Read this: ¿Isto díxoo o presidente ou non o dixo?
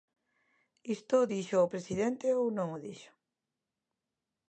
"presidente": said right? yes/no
yes